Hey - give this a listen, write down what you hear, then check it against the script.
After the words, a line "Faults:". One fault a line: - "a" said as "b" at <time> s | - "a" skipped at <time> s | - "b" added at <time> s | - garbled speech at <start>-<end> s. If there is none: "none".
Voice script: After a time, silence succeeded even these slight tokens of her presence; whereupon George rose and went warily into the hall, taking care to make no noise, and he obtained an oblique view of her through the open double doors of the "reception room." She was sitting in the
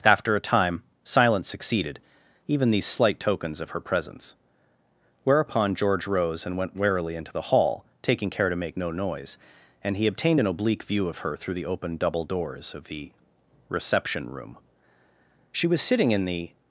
After a time, silence succeeded even these slight tokens of her presence; whereupon George rose and went warily into the hall, taking care to make no noise, and he obtained an oblique view of her through the open double doors of the "reception room." She was sitting in the
Faults:
none